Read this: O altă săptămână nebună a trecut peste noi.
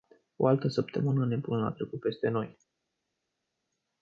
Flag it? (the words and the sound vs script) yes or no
no